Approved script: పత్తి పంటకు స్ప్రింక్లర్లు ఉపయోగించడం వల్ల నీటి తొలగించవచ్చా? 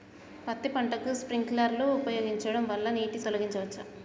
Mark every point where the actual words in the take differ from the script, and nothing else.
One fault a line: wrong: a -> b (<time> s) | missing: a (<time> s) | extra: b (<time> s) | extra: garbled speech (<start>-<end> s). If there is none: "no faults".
no faults